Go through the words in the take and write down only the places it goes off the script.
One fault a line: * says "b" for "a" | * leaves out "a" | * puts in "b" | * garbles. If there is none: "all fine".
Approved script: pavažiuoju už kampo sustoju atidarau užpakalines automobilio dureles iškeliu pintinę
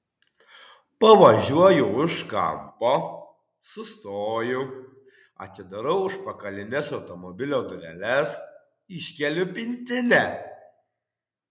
all fine